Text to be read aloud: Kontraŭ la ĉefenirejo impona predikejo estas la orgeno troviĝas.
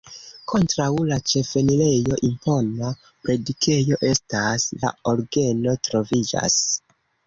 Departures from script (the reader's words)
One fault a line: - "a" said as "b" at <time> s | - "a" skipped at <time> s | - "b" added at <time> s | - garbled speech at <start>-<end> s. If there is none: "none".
none